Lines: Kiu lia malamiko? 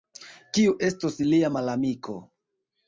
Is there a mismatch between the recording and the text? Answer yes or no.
yes